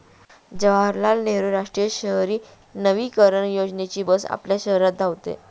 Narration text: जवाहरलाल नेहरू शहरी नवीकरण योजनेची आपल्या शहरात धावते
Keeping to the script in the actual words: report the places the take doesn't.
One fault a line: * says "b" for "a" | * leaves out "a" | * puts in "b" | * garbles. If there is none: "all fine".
* puts in "राष्ट्रीय"
* puts in "बस"